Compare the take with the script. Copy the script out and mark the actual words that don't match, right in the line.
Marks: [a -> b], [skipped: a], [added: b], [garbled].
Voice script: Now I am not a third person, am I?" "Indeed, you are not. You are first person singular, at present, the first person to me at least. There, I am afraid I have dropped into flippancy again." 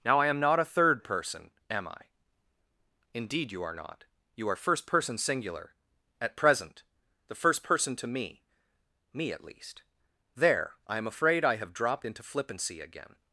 Now I am not a third person, am I?" "Indeed, you are not. You are first person singular, at present, the first person to me [added: me] at least. There, I am afraid I have dropped into flippancy again."